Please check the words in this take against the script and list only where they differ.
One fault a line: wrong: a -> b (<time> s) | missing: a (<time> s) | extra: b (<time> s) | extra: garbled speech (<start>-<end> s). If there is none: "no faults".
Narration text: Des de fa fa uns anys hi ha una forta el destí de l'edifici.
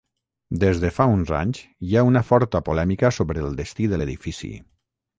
missing: fa (1.1 s)
extra: polèmica sobre (2.7 s)